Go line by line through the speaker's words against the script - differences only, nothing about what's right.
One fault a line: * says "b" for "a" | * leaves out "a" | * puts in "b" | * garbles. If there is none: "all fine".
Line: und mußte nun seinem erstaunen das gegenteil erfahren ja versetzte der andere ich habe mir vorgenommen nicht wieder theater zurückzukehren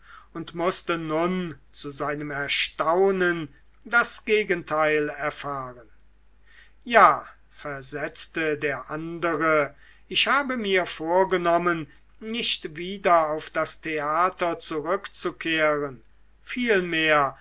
* puts in "zu"
* puts in "auf das"